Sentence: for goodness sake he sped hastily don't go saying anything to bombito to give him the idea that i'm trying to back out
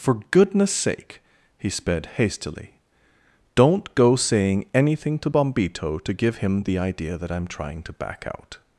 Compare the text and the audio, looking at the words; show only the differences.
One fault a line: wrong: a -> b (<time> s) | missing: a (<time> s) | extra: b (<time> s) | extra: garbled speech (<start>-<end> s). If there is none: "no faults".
no faults